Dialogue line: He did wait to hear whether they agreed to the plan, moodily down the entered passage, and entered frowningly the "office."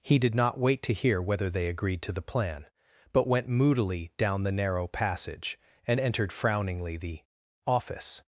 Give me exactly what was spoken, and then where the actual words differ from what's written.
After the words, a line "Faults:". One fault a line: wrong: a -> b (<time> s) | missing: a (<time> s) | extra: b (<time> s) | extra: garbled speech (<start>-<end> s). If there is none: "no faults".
He did not wait to hear whether they agreed to the plan, but went moodily down the narrow passage, and entered frowningly the "office."
Faults:
extra: not (0.3 s)
extra: but went (3.1 s)
wrong: entered -> narrow (4.5 s)